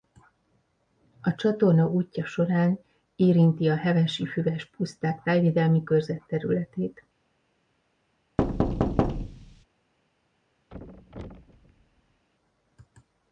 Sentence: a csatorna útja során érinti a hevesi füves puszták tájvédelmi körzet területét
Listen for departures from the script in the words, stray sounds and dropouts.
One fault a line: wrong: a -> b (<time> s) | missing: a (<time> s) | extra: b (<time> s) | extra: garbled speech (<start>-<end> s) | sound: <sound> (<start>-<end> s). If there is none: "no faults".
sound: thud (8.4-9.6 s)
sound: thud (10.7-12.3 s)